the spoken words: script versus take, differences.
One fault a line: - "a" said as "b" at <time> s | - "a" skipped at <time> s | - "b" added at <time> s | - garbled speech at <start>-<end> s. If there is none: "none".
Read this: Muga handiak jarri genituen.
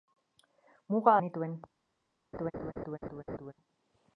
- "handiak jarri" skipped at 1.1 s